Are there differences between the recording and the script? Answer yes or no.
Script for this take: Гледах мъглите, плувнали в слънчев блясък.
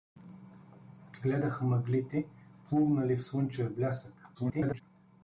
yes